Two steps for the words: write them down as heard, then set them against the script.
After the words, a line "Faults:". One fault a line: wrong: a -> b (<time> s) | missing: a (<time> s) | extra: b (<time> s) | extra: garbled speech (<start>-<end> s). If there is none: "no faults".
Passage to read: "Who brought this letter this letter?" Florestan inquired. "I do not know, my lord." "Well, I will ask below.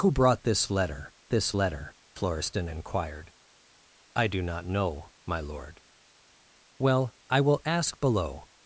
"Who brought this letter this letter?" Florestan inquired. "I do not know, my lord." "Well, I will ask below.
Faults:
no faults